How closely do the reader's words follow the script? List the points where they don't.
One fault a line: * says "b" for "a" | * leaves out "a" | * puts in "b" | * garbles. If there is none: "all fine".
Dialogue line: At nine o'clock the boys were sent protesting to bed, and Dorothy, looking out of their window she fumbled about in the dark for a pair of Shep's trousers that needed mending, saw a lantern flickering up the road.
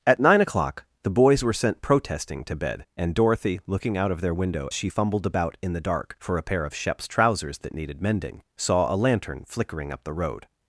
all fine